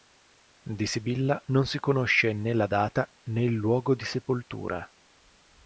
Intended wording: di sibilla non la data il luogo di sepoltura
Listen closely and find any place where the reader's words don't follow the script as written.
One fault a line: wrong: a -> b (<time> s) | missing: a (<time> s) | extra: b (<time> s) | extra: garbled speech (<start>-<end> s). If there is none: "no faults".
extra: si conosce né (1.7 s)
extra: né (3.2 s)